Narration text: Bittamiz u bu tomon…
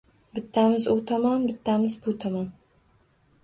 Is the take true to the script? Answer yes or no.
no